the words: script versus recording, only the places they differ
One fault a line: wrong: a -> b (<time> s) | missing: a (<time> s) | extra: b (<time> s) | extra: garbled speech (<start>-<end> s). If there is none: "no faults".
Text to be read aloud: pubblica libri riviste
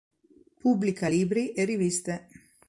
extra: e (1.5 s)